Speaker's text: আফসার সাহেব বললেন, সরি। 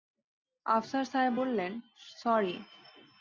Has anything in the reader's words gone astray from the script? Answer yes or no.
no